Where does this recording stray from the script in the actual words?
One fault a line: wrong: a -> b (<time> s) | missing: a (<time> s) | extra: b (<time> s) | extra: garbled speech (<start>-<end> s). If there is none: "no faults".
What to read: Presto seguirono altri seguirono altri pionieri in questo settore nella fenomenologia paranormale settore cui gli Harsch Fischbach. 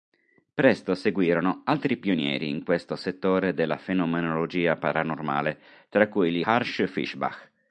missing: seguirono altri (1.9 s)
wrong: nella -> della (3.5 s)
wrong: settore -> tra (5.9 s)